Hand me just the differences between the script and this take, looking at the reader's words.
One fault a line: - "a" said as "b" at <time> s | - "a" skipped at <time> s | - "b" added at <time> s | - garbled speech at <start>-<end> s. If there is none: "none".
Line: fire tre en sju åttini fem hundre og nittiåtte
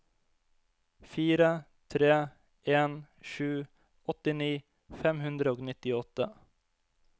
none